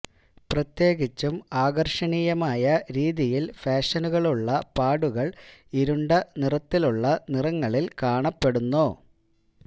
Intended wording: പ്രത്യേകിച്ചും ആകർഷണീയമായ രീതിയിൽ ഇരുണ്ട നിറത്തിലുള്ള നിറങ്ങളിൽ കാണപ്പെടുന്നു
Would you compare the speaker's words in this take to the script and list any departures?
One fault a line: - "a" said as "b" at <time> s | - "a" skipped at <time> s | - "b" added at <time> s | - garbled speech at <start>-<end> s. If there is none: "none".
- "ഫാഷനുകളുള്ള പാടുകൾ" added at 3.5 s